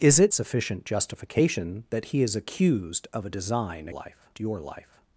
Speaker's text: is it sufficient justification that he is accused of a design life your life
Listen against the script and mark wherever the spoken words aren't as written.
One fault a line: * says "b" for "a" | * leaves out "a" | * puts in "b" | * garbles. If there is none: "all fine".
all fine